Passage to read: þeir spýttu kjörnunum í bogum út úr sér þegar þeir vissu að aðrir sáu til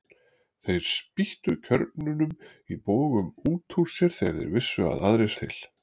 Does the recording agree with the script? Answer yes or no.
no